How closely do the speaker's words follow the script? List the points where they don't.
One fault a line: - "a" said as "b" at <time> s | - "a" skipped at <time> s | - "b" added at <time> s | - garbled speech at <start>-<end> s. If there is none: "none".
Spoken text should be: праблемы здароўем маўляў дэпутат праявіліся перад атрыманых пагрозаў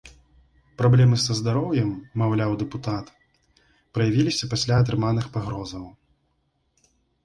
- "са" added at 1.2 s
- "перад" said as "пасля" at 4.6 s